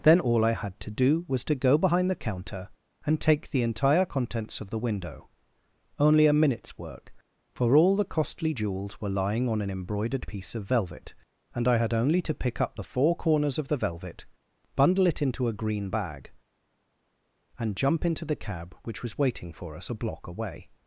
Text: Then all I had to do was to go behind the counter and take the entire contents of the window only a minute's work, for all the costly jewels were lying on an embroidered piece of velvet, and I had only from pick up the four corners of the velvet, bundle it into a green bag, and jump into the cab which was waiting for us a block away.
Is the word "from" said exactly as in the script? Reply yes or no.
no